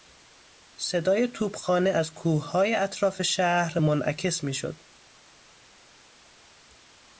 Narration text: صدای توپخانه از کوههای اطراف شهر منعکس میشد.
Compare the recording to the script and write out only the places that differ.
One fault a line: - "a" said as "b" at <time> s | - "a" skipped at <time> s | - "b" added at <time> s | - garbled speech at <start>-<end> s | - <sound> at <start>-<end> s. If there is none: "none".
none